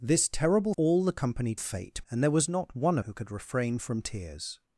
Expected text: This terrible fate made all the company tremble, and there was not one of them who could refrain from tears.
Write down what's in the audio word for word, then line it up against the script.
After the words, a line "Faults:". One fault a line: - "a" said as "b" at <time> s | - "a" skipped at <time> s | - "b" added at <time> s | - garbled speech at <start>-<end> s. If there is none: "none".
This terrible all the company fate, and there was not one who could refrain from tears.
Faults:
- "fate made" skipped at 0.7 s
- "tremble" said as "fate" at 1.6 s
- "of them" skipped at 3.0 s